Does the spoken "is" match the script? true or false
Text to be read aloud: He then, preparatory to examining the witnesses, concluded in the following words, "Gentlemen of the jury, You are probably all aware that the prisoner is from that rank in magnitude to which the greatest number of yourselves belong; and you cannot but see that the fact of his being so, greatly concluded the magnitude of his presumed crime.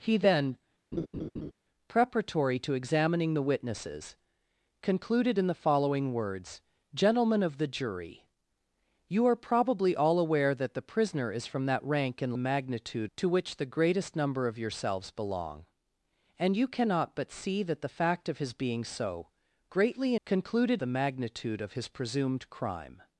true